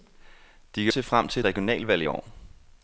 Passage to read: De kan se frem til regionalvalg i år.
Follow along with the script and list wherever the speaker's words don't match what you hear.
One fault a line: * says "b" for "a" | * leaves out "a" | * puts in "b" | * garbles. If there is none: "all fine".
all fine